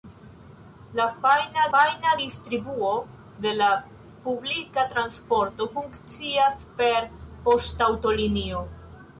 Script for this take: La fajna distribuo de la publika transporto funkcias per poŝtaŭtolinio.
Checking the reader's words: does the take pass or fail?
fail